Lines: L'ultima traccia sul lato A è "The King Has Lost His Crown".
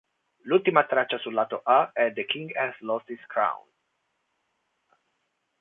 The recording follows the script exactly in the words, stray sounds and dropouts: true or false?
true